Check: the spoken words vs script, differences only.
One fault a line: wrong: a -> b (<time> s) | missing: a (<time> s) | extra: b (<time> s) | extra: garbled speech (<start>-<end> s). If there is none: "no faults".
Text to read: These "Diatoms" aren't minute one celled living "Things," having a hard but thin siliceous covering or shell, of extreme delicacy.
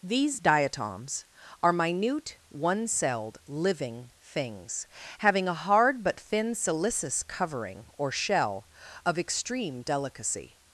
wrong: aren't -> are (1.6 s)